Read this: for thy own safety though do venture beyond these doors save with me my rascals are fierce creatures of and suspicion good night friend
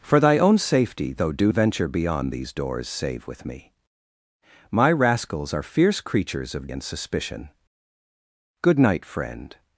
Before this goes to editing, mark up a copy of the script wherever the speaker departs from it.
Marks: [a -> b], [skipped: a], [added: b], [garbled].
for thy own safety though do venture beyond these doors save with me my rascals are fierce creatures of and suspicion good night friend